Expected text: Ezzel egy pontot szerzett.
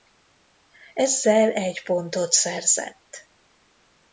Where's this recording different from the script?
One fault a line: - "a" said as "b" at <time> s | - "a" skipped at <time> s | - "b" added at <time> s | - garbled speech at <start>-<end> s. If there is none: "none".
none